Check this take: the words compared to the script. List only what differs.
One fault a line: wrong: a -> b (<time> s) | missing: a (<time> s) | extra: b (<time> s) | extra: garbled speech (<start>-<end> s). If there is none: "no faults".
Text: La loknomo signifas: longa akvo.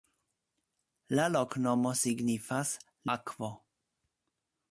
missing: longa (2.7 s)